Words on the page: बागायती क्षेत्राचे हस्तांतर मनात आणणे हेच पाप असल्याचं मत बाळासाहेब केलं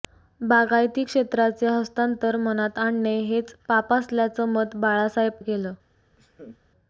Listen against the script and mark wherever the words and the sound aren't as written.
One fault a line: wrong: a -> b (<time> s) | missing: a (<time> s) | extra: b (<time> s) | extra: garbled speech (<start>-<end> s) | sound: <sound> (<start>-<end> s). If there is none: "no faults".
sound: laugh (6.2-6.6 s)